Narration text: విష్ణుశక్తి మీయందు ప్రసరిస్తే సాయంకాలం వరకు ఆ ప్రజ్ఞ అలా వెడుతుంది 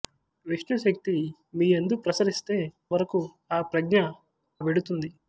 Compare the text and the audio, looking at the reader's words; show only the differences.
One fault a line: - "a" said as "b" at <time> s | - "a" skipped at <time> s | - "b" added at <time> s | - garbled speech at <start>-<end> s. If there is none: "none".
- "సాయంకాలం" skipped at 2.6 s
- "అలా" skipped at 4.0 s